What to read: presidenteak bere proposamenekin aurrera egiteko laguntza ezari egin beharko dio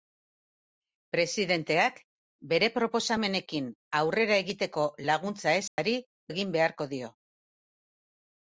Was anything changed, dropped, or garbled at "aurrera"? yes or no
no